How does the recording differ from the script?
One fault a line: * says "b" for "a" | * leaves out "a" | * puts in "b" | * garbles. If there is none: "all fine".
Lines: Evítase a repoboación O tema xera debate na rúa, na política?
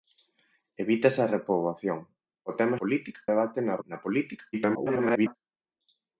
* says "política" for "xera"
* leaves out "rúa"
* garbles